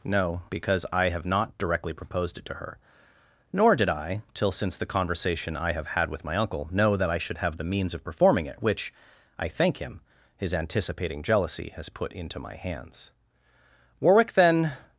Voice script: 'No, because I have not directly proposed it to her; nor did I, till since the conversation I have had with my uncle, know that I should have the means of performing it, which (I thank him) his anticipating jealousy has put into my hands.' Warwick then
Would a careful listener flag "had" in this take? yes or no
no